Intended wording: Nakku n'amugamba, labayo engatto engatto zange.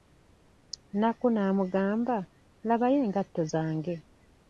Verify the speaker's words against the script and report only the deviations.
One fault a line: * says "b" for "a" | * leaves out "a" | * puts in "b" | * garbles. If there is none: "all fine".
* leaves out "engatto"